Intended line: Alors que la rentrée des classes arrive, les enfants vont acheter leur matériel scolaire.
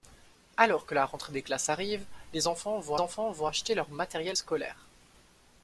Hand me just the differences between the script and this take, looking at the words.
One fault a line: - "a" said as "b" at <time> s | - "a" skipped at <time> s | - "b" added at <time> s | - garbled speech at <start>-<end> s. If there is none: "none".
- "enfants vont" added at 3.0 s